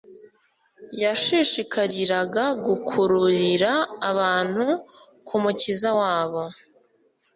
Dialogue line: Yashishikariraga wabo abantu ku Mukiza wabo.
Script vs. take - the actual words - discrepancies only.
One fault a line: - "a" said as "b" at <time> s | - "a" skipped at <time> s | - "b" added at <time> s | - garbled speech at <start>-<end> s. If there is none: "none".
- "wabo" said as "gukururira" at 2.7 s